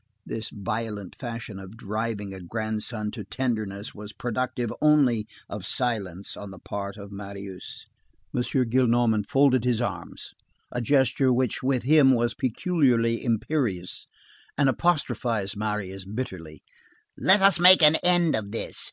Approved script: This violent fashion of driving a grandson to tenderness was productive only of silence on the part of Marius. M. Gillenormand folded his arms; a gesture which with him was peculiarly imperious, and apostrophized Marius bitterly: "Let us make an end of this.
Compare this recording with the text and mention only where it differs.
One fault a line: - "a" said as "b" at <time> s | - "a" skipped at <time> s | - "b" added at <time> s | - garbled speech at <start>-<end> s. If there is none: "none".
none